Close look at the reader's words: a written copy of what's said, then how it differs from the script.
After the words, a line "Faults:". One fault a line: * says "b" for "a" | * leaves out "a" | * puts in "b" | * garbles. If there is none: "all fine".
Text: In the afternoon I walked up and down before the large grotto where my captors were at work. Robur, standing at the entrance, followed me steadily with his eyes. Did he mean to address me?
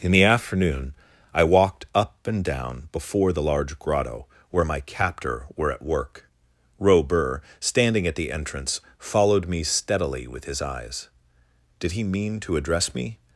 In the afternoon I walked up and down before the large grotto where my captor were at work. Robur, standing at the entrance, followed me steadily with his eyes. Did he mean to address me?
Faults:
* says "captor" for "captors"